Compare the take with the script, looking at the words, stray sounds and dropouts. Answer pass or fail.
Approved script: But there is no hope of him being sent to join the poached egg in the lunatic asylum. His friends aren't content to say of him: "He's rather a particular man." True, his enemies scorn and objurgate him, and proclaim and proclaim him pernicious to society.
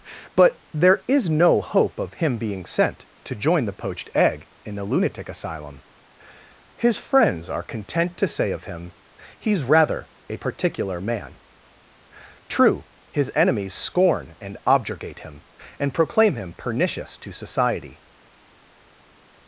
fail